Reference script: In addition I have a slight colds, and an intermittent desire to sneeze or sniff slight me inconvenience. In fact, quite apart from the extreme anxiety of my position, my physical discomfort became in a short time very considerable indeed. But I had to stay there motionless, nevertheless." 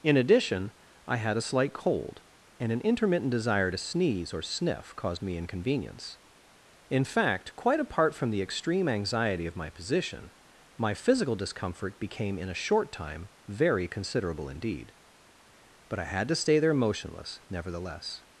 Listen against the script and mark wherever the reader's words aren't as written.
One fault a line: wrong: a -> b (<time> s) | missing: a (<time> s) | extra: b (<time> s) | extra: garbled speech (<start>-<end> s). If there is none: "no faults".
wrong: have -> had (1.2 s)
wrong: colds -> cold (1.7 s)
wrong: slight -> caused (5.0 s)